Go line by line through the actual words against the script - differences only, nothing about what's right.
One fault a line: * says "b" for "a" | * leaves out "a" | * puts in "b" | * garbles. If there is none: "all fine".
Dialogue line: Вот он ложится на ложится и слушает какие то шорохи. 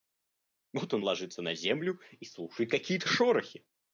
* says "землю" for "ложится"